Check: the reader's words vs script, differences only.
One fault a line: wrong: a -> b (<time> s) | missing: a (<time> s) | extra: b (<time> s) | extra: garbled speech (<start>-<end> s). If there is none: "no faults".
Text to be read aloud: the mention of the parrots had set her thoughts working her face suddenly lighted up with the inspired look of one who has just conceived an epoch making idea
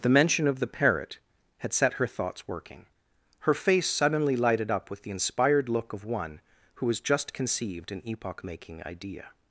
wrong: parrots -> parrot (0.7 s)